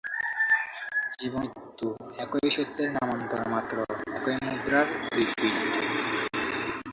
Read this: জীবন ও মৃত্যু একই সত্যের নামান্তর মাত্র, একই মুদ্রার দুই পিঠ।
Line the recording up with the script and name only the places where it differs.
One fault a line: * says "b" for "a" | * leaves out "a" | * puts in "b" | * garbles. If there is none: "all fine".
* leaves out "ও"